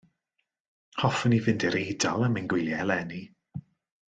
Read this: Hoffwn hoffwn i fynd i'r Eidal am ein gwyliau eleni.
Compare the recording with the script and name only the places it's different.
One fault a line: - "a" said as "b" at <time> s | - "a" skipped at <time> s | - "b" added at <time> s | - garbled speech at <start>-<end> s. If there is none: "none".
- "hoffwn" skipped at 1.4 s